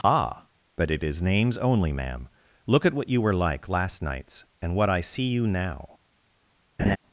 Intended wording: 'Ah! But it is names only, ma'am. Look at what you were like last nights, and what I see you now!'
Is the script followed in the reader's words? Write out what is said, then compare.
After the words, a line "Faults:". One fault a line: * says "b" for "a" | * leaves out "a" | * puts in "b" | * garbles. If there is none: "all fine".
'Ah! But it is names only, ma'am. Look at what you were like last nights, and what I see you now!'
Faults:
all fine